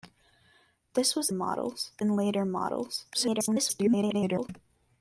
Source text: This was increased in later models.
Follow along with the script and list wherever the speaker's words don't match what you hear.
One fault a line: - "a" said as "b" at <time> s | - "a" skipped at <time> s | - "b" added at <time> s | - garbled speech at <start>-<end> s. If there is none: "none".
- "increased" said as "models" at 1.3 s
- garbled speech at 3.1-4.5 s